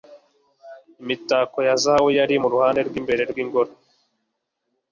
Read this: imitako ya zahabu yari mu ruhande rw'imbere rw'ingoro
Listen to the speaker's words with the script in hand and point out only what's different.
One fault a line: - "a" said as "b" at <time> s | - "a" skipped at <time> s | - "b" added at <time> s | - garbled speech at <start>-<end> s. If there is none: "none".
none